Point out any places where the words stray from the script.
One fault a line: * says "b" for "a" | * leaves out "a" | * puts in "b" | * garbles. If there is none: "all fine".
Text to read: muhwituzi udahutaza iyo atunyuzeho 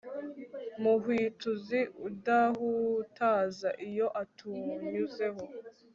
all fine